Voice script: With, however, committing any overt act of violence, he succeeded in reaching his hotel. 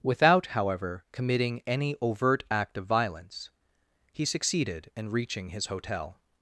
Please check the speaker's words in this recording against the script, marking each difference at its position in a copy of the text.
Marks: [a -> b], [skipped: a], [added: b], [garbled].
[With, -> Without] however, committing any overt act of violence, he succeeded in reaching his hotel.